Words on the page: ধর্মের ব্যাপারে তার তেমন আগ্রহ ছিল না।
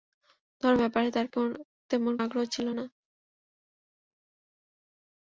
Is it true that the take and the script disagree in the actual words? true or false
false